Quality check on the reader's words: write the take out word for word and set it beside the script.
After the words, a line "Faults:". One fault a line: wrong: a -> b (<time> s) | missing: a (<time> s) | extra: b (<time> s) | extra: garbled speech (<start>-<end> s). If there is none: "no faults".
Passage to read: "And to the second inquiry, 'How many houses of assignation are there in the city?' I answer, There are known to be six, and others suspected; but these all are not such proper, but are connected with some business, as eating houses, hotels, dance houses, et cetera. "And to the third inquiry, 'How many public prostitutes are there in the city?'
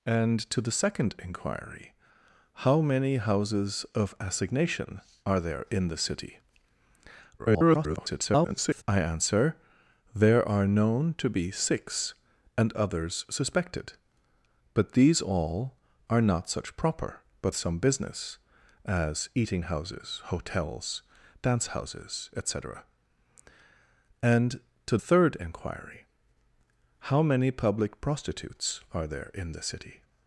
"And to the second inquiry, 'How many houses of assignation are there in the city?' [garbled] I answer, There are known to be six, and others suspected; but these all are not such proper, but some business, as eating houses, hotels, dance houses, et cetera. "And to third inquiry, 'How many public prostitutes are there in the city?'
Faults:
extra: garbled speech (7.4-8.8 s)
missing: are connected with (17.5 s)
missing: the (25.0 s)